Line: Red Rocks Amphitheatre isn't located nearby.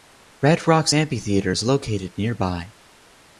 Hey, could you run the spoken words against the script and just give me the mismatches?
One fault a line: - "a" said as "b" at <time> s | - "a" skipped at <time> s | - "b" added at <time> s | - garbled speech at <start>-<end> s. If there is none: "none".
- "isn't" said as "is" at 1.5 s